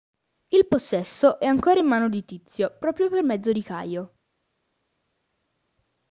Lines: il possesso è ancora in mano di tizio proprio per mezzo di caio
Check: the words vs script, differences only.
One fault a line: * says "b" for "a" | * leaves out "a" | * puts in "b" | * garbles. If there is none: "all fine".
all fine